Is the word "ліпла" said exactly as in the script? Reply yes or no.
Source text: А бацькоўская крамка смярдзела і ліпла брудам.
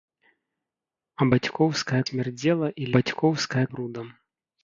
no